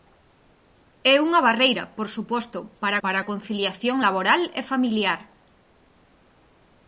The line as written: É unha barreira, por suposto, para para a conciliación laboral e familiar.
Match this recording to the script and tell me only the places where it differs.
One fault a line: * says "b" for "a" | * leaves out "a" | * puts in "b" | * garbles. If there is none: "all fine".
all fine